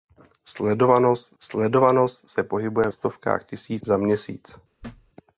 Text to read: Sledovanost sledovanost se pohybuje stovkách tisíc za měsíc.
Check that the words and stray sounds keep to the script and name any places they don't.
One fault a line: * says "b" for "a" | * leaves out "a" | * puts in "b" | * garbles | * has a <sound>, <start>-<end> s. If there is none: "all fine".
* has a thud, 4.8-5.1 s